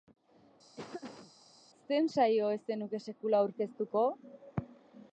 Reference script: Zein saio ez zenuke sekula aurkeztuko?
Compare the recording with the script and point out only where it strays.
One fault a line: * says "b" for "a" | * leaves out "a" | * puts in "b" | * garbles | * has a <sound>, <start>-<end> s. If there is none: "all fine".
* has a laugh, 0.8-1.3 s